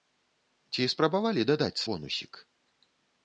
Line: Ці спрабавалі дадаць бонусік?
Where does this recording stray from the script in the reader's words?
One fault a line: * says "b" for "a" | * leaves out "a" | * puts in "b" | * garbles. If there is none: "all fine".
all fine